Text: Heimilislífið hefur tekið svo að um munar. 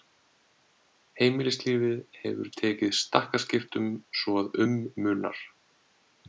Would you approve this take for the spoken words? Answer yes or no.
no